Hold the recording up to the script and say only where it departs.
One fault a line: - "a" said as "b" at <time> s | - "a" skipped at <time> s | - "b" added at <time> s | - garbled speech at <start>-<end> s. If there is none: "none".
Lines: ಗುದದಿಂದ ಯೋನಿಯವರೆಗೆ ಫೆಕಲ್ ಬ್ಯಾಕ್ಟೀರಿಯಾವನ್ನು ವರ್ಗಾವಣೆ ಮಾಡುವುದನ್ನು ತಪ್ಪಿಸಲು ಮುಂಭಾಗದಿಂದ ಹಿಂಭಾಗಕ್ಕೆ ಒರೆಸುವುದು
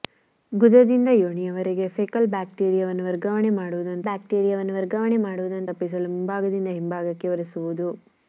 - "ಬ್ಯಾಕ್ಟೀರಿಯಾವನ್ನು ವರ್ಗಾವಣೆ ಮಾಡುವುದನ್ನು" added at 4.0 s